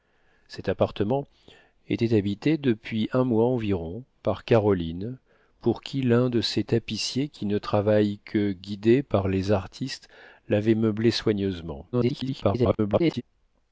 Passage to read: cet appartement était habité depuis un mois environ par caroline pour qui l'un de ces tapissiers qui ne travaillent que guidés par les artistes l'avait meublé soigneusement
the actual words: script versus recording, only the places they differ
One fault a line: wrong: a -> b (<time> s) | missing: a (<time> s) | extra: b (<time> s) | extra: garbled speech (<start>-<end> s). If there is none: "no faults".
extra: garbled speech (11.9-13.2 s)